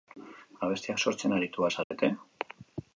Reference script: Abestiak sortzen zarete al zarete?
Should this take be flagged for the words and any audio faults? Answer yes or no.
yes